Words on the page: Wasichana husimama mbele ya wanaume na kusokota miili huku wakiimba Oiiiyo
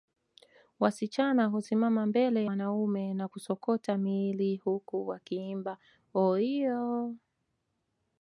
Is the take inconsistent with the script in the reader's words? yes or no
yes